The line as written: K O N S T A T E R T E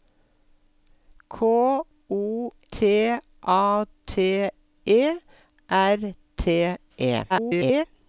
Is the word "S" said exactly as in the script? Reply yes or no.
no